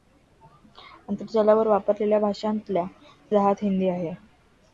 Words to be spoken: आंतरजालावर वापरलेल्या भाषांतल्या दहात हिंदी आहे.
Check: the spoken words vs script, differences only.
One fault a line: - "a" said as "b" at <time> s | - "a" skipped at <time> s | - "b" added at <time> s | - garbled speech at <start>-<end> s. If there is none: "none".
none